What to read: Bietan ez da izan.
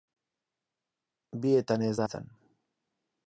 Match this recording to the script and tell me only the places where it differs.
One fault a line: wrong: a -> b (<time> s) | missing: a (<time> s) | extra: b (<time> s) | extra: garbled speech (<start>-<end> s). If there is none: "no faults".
no faults